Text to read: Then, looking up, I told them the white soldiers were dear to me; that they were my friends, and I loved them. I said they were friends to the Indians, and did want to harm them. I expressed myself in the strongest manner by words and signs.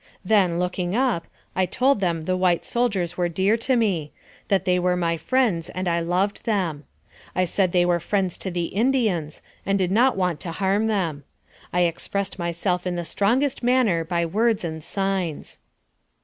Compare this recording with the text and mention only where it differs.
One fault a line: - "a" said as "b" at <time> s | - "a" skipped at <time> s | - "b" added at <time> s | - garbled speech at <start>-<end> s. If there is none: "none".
- "not" added at 9.9 s